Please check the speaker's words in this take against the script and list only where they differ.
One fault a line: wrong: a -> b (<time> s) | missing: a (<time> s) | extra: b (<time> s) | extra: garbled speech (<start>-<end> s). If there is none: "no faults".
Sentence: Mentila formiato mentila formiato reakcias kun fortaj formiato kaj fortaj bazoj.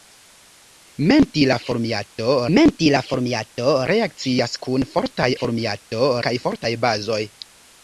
no faults